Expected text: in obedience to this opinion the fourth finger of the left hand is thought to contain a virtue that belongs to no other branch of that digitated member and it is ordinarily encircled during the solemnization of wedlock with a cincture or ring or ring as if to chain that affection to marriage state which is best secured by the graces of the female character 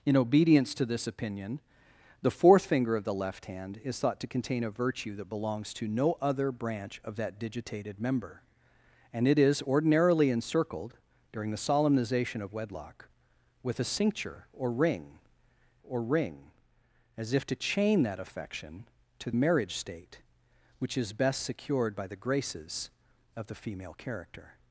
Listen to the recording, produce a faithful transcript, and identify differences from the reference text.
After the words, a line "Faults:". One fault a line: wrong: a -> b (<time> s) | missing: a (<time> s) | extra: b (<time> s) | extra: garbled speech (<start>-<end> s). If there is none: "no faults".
in obedience to this opinion the fourth finger of the left hand is thought to contain a virtue that belongs to no other branch of that digitated member and it is ordinarily encircled during the solemnization of wedlock with a cincture or ring or ring as if to chain that affection to marriage state which is best secured by the graces of the female character
Faults:
no faults